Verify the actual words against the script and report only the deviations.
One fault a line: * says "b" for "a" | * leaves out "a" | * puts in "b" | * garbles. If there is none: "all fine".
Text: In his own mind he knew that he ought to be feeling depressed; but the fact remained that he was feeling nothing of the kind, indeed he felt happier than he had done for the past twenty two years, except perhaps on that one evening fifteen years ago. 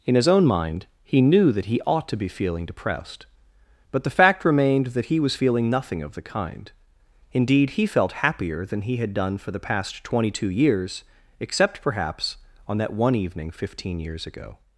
all fine